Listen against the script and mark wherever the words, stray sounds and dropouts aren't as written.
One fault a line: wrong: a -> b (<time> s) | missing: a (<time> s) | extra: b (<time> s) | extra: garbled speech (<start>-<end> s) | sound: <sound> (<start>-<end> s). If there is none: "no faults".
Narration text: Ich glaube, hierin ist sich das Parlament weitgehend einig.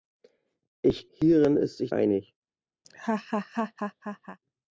missing: glaube (1.1 s)
missing: das Parlament weitgehend (1.9 s)
sound: laugh (2.8-4.4 s)